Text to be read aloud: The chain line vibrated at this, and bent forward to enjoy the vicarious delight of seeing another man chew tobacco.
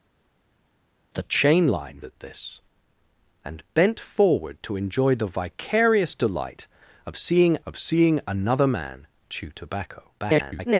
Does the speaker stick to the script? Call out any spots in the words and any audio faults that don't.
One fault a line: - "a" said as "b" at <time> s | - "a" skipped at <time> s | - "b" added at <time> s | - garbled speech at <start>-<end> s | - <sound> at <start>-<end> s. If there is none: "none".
- "vibrated" skipped at 2.0 s
- "of seeing" added at 7.7 s
- garbled speech at 10.2-10.8 s